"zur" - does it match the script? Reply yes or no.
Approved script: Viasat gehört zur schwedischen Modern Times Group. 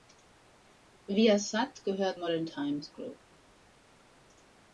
no